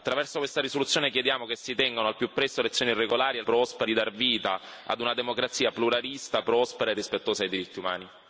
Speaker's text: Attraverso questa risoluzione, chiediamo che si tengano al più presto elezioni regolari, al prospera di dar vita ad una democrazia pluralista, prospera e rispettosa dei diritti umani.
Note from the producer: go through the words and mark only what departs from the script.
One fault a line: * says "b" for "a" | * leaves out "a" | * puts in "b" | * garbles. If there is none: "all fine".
all fine